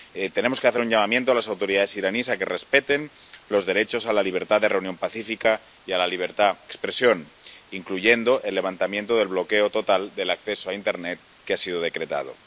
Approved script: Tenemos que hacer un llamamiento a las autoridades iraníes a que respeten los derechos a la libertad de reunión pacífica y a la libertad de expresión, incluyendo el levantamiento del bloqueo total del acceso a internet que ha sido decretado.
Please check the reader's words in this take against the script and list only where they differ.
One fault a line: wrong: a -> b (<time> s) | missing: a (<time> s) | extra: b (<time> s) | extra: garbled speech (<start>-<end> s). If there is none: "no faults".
missing: de (6.6 s)